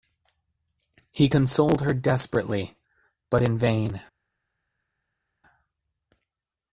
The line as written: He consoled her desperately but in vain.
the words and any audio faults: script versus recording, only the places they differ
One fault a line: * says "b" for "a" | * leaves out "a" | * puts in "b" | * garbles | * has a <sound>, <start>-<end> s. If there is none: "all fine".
all fine